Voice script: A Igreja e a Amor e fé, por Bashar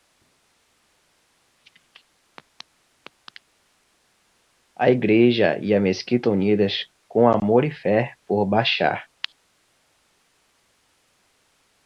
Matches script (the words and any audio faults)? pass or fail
fail